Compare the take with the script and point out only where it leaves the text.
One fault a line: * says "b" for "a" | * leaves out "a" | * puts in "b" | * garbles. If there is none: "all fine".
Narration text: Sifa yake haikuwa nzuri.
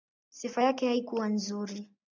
all fine